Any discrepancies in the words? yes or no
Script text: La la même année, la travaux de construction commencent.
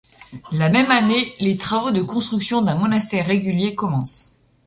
yes